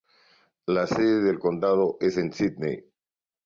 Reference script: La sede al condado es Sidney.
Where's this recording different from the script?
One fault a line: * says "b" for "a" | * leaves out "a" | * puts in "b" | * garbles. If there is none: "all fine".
* says "del" for "al"